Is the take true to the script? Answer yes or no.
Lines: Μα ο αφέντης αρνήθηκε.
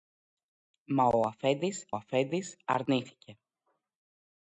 no